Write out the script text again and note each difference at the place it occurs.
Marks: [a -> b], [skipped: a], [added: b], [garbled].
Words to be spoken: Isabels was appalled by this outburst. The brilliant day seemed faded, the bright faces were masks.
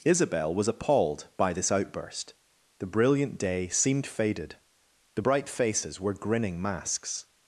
[Isabels -> Isabel] was appalled by this outburst. The brilliant day seemed faded, the bright faces were [added: grinning] masks.